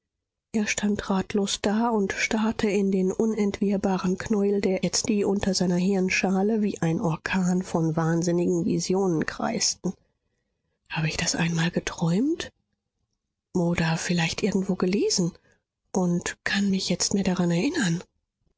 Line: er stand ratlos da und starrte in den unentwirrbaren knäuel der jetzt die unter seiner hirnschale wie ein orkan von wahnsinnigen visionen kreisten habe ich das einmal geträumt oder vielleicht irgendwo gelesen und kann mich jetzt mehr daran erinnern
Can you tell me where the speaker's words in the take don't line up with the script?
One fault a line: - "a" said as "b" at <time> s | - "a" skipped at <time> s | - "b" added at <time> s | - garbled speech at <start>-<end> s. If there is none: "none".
none